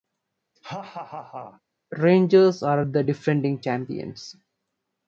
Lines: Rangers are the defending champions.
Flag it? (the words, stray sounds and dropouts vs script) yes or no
yes